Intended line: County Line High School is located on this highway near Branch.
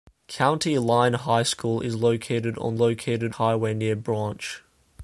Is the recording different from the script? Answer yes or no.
yes